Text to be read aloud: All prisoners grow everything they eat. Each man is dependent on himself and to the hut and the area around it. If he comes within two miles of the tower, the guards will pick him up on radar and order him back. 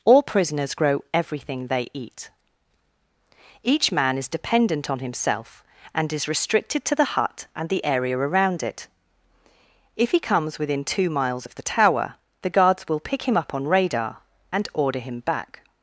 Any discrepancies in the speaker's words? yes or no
yes